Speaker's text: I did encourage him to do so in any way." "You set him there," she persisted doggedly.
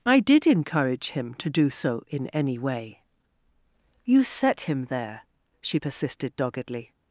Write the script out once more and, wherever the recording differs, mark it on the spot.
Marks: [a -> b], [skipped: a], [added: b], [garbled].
I did encourage him to do so in any way." "You set him there," she persisted doggedly.